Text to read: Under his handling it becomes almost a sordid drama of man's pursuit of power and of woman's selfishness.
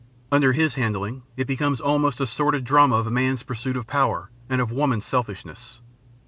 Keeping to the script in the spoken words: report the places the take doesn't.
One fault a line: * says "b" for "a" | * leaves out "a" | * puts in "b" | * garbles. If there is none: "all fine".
all fine